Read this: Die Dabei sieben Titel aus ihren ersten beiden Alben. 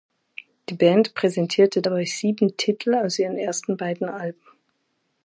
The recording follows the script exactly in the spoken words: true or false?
false